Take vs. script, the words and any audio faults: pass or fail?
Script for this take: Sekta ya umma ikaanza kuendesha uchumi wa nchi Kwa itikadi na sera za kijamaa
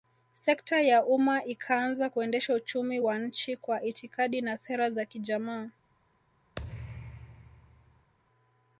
fail